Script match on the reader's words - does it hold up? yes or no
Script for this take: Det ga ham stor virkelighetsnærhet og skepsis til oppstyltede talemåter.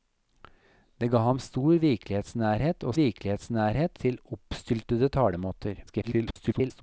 no